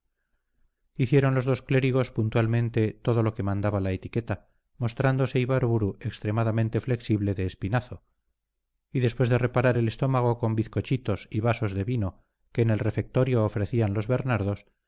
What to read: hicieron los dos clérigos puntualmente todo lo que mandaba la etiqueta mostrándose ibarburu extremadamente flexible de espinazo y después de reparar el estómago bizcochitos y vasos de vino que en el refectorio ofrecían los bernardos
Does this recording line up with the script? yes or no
no